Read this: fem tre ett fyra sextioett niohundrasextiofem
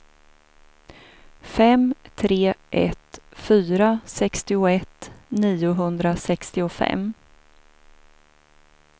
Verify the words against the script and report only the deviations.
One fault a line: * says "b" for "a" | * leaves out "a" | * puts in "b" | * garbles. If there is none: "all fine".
all fine